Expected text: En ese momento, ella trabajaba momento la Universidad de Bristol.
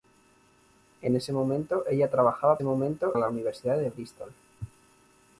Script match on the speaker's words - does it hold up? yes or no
yes